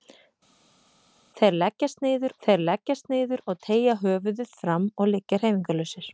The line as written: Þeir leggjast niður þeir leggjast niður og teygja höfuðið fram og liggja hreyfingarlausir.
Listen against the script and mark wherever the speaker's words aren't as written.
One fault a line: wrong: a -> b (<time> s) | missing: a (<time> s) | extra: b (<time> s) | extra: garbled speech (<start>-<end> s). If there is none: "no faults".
no faults